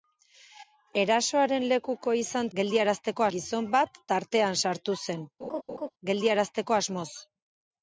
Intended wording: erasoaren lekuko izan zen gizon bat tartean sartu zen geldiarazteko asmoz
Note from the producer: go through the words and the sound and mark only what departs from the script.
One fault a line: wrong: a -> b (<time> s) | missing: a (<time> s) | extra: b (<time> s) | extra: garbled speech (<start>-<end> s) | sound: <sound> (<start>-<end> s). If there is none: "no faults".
wrong: zen -> geldiarazteko (2.6 s)
sound: laugh (5.4-5.9 s)